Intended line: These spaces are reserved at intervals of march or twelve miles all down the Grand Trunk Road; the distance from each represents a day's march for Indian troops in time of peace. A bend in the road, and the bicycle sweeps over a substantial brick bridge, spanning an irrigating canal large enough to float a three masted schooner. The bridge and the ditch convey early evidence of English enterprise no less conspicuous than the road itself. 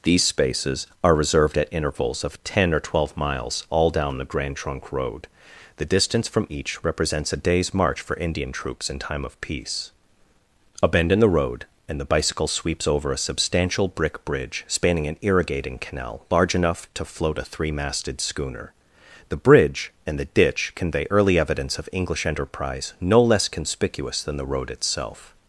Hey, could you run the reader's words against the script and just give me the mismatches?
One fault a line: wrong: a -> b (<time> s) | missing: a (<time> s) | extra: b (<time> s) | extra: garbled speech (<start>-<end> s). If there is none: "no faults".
wrong: march -> ten (2.4 s)